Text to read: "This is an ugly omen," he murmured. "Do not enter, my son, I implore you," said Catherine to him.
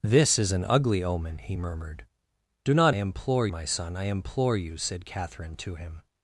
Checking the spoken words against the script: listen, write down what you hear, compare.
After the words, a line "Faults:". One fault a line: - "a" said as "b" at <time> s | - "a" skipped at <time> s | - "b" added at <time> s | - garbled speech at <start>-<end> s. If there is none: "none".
"This is an ugly omen," he murmured. "Do not implore, my son, I implore you," said Catherine to him.
Faults:
- "enter" said as "implore" at 2.9 s